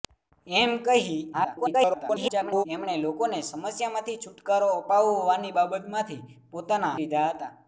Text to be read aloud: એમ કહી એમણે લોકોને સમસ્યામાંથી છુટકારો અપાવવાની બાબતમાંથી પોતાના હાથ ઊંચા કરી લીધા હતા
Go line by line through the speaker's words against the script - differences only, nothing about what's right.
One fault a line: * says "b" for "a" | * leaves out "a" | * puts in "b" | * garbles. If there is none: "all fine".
* garbles
* leaves out "હાથ ઊંચા કરી"